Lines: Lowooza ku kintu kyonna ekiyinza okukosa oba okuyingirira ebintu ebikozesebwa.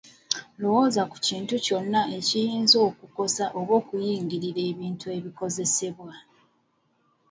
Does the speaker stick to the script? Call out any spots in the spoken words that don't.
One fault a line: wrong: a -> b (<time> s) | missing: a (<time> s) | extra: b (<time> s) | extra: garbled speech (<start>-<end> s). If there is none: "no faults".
no faults